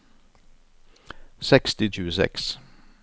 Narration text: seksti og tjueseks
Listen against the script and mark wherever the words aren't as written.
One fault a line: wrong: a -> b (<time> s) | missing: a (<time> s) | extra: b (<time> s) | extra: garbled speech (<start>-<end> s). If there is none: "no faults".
no faults